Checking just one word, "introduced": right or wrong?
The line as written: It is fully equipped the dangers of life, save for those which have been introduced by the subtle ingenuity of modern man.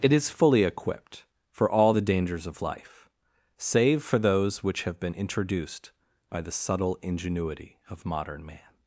right